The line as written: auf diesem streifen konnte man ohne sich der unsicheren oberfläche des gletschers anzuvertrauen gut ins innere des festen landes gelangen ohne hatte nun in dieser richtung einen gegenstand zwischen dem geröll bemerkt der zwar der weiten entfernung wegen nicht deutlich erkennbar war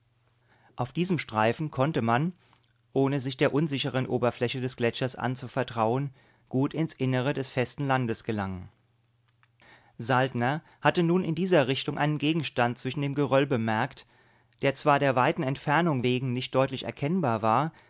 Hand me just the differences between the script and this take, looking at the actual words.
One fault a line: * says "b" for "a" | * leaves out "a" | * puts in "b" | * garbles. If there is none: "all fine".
* says "saltner" for "ohne"